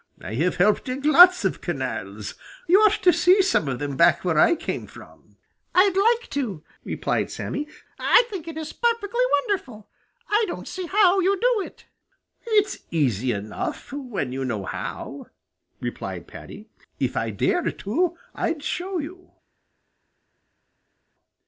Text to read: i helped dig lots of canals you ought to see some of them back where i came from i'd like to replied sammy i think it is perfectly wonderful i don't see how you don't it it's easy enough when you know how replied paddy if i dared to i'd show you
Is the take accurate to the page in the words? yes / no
no